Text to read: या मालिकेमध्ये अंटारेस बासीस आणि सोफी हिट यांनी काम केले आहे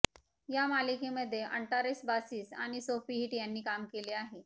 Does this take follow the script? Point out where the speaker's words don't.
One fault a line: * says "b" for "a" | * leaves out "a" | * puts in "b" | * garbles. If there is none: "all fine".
all fine